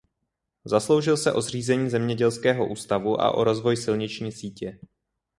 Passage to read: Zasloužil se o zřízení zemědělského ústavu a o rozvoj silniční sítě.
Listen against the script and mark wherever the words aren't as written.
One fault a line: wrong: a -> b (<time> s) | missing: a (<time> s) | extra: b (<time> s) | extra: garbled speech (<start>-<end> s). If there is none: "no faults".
no faults